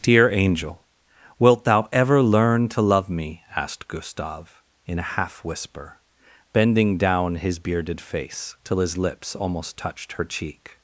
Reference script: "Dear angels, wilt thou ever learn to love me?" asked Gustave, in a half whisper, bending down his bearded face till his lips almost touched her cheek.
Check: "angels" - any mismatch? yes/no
yes